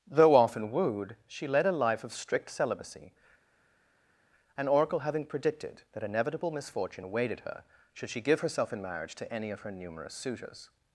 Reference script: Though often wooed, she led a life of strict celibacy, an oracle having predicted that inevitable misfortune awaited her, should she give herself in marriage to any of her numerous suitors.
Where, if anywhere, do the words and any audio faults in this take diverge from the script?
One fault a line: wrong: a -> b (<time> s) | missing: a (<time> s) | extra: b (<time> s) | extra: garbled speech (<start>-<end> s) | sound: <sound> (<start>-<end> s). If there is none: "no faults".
no faults